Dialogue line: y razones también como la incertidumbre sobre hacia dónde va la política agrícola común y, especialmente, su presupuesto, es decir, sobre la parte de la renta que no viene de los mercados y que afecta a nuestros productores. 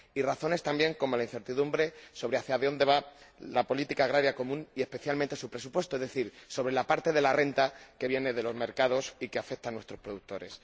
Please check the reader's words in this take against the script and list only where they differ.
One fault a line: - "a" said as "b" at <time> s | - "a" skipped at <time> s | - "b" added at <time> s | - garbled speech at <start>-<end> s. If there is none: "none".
- "no" skipped at 8.1 s